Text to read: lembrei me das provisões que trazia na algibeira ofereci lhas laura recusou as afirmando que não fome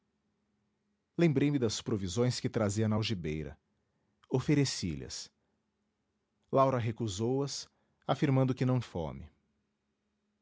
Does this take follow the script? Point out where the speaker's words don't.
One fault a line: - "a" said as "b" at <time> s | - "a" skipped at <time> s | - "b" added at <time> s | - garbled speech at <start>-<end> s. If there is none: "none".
none